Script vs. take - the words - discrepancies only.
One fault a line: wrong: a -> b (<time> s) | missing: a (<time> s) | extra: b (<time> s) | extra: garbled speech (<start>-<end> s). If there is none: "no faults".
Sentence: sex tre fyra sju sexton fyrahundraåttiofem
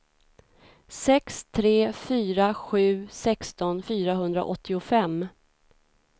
no faults